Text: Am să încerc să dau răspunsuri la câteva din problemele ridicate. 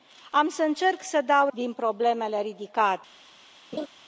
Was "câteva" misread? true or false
true